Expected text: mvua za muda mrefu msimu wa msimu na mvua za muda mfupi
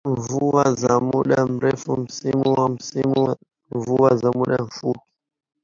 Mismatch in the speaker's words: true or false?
false